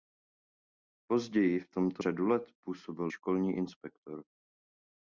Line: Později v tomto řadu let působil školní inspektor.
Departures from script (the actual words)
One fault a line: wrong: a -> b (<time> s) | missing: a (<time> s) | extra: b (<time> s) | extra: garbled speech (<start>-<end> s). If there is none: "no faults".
no faults